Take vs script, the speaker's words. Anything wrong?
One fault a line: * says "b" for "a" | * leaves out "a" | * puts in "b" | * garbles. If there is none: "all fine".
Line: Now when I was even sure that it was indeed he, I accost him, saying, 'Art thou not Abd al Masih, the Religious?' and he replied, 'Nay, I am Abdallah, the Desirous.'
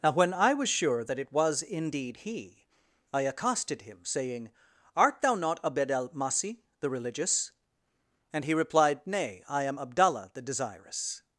* leaves out "even"
* says "accosted" for "accost"